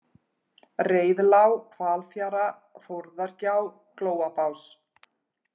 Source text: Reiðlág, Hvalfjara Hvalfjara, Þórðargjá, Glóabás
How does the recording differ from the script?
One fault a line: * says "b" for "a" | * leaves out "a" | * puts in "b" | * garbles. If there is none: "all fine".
* leaves out "Hvalfjara"